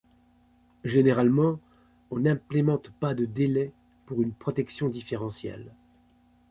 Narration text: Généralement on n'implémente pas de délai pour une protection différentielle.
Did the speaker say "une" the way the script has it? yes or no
yes